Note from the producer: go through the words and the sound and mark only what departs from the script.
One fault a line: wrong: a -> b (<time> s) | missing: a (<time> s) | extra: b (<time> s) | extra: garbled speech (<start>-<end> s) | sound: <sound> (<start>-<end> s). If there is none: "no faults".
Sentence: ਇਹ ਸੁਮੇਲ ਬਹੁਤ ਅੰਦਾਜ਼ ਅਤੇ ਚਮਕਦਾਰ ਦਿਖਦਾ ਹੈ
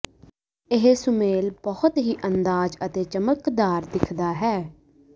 extra: ਹੀ (2.0 s)